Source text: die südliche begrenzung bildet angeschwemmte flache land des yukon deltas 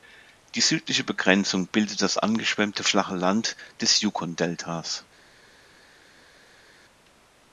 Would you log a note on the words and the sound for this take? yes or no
yes